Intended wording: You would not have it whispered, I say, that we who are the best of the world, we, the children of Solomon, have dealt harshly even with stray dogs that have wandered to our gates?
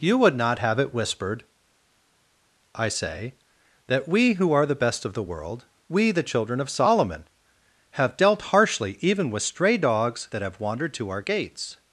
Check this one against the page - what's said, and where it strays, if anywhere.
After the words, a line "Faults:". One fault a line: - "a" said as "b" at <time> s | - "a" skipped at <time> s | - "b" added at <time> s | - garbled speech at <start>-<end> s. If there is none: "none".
You would not have it whispered, I say, that we who are the best of the world, we, the children of Solomon, have dealt harshly even with stray dogs that have wandered to our gates?
Faults:
none